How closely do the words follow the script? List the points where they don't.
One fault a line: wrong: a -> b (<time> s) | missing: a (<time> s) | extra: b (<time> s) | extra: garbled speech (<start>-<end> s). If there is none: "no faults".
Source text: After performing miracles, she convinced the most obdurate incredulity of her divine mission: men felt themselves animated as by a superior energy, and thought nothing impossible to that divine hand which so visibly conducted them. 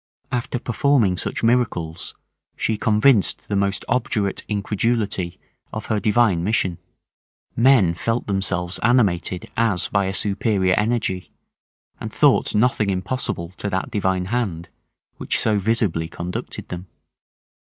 extra: such (1.1 s)